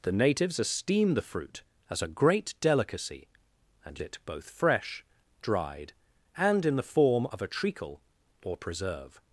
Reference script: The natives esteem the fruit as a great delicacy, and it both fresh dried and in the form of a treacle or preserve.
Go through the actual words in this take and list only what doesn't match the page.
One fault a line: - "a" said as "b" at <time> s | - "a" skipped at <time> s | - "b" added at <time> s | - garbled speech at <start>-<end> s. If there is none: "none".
none